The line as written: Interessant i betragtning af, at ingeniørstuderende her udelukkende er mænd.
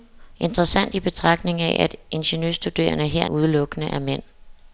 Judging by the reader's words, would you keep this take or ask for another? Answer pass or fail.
pass